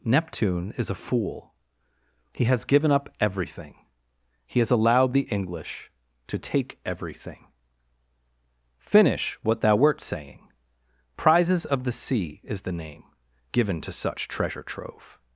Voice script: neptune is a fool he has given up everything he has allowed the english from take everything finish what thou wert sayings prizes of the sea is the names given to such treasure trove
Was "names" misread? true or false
true